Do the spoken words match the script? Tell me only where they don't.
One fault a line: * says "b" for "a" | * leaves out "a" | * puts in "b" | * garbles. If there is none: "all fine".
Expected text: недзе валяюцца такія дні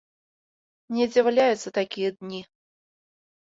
all fine